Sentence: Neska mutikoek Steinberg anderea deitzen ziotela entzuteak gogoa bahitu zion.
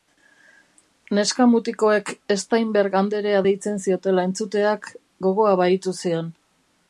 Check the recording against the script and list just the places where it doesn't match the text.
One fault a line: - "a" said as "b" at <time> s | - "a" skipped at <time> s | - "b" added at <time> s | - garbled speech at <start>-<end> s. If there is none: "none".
none